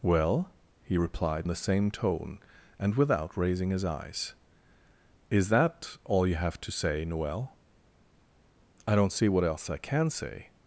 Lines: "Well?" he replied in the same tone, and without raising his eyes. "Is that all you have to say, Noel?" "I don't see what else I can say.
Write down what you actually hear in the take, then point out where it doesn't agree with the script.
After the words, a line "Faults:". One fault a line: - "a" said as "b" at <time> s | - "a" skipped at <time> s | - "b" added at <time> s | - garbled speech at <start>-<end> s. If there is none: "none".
"Well?" he replied the same tone, and without raising his eyes. "Is that all you have to say, Noel?" "I don't see what else I can say.
Faults:
- "in" skipped at 1.5 s